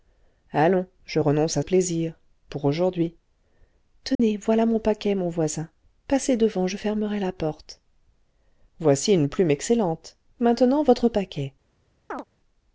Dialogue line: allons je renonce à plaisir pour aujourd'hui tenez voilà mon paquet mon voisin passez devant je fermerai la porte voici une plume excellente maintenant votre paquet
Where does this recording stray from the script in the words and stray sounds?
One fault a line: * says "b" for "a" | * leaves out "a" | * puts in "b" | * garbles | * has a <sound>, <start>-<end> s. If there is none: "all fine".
* has a dropout, 4.1-4.2 s
* has a chirp, 12.1-12.2 s